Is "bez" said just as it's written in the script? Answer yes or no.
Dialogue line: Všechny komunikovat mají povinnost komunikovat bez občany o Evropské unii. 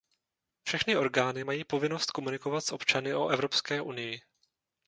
no